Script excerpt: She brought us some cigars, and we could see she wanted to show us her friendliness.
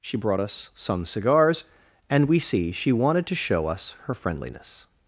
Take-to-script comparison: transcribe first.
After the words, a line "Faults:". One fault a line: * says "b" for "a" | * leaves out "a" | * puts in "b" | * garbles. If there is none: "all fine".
She brought us some cigars, and we see she wanted to show us her friendliness.
Faults:
* leaves out "could"